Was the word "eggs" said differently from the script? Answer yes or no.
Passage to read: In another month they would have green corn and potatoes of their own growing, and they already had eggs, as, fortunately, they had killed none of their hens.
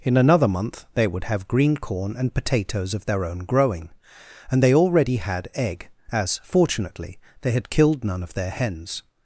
yes